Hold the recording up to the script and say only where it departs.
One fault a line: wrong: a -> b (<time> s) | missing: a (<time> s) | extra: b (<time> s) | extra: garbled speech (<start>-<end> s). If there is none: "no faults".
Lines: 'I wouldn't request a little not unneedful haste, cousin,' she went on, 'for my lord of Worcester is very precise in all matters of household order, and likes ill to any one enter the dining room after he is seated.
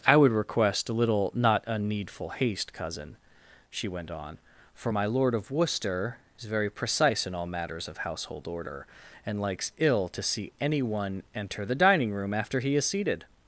wrong: wouldn't -> would (0.2 s)
extra: see (10.2 s)